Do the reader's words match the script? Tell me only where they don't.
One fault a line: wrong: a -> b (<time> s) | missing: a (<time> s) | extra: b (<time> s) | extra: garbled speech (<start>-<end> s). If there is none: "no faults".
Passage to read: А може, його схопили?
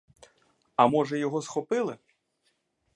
no faults